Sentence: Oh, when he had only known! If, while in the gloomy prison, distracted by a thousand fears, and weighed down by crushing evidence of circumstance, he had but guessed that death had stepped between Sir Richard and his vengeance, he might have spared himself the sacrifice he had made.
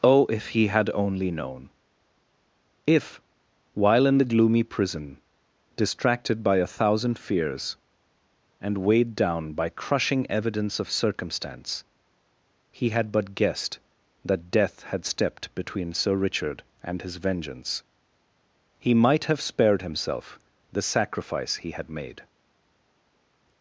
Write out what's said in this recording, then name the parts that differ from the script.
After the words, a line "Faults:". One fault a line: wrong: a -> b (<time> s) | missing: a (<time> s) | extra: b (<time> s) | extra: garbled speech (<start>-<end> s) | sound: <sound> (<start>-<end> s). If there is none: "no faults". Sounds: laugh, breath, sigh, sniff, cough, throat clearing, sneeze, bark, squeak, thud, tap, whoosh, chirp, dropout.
Oh, if he had only known! If, while in the gloomy prison, distracted by a thousand fears, and weighed down by crushing evidence of circumstance, he had but guessed that death had stepped between Sir Richard and his vengeance, he might have spared himself the sacrifice he had made.
Faults:
wrong: when -> if (0.3 s)